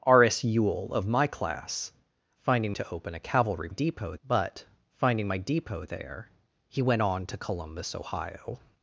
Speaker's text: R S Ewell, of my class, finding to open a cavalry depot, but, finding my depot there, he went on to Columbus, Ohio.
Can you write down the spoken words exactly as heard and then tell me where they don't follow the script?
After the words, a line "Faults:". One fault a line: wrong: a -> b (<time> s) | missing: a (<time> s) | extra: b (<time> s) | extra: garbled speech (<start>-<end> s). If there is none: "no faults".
R S Ewell, of my class, finding to open a cavalry depot, but, finding my depot there, he went on to Columbus, Ohio.
Faults:
no faults